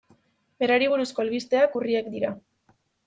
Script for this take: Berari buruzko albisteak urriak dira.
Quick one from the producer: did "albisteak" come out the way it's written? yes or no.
yes